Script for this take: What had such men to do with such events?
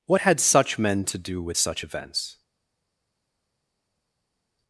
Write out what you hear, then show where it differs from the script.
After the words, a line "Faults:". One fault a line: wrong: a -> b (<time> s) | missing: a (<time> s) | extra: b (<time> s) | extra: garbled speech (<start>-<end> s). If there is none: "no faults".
What had such men to do with such events?
Faults:
no faults